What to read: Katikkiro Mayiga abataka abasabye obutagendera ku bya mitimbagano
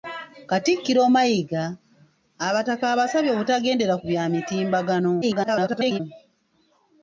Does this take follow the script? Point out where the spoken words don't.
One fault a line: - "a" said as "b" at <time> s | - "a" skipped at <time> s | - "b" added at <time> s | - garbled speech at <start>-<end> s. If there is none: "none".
- garbled speech at 5.2-6.0 s